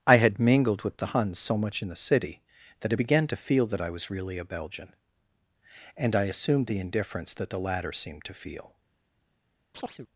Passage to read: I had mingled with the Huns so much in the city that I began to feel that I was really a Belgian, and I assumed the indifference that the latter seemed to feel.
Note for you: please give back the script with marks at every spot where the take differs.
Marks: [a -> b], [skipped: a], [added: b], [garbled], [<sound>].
I had mingled with the Huns so much in the city that I began to feel that I was really a Belgian, and I assumed the indifference that the latter seemed to feel. [chirp]